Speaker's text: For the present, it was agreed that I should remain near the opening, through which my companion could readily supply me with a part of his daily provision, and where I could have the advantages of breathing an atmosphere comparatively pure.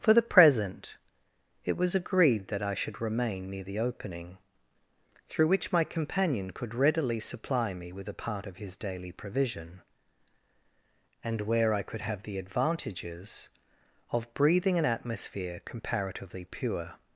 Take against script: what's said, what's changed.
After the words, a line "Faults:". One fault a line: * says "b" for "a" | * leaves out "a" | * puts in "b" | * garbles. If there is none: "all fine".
For the present, it was agreed that I should remain near the opening, through which my companion could readily supply me with a part of his daily provision, and where I could have the advantages of breathing an atmosphere comparatively pure.
Faults:
all fine